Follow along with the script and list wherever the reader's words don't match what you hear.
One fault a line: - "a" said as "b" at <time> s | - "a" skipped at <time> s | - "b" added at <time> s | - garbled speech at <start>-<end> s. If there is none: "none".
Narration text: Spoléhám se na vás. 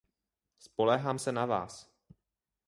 none